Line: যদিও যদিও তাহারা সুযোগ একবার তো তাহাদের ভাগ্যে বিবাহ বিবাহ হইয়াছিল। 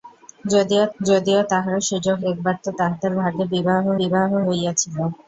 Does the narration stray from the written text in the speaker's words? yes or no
no